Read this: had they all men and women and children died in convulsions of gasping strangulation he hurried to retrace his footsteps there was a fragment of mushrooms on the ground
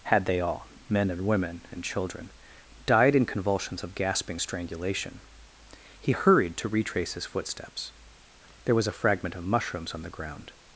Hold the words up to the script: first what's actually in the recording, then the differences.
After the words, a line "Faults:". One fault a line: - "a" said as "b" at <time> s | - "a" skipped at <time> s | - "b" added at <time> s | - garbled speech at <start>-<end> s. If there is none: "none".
had they all men and women and children died in convulsions of gasping strangulation he hurried to retrace his footsteps there was a fragment of mushrooms on the ground
Faults:
none